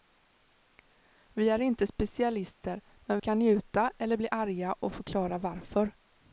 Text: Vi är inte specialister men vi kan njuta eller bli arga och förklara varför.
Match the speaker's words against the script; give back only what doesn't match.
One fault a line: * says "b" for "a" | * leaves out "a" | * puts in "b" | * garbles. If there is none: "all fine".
* leaves out "vi"